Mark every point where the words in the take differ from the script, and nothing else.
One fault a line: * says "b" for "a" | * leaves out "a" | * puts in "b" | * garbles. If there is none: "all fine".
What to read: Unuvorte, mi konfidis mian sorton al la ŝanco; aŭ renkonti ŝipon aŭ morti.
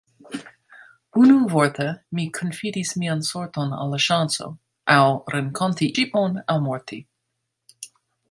all fine